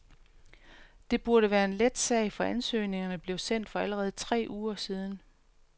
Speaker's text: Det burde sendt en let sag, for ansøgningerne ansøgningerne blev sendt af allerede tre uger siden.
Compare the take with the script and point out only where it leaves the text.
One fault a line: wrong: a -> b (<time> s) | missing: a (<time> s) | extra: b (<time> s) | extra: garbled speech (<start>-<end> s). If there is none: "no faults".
wrong: sendt -> være (1.5 s)
missing: ansøgningerne (3.2 s)
wrong: af -> for (3.7 s)